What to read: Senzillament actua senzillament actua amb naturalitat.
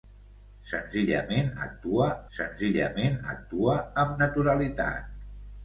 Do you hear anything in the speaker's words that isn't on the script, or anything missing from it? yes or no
no